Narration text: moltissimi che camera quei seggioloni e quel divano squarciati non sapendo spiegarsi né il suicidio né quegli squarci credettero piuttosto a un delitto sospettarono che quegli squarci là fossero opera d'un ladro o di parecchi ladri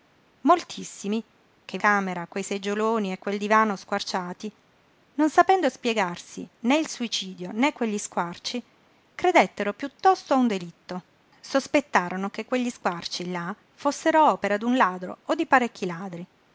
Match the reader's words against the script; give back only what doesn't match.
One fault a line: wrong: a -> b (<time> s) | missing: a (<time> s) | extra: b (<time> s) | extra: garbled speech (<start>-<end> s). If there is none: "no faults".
no faults